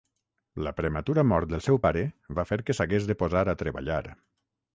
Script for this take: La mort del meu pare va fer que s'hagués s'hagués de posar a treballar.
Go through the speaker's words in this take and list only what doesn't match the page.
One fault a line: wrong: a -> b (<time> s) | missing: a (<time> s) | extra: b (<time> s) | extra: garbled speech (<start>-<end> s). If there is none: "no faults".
extra: prematura (0.8 s)
wrong: meu -> seu (1.6 s)
missing: s'hagués (3.1 s)